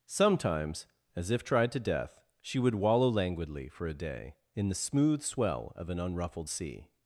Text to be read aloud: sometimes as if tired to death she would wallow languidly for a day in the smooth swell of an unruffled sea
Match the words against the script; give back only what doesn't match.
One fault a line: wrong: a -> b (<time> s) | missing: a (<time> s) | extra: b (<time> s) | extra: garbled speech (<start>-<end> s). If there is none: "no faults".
wrong: tired -> tried (1.4 s)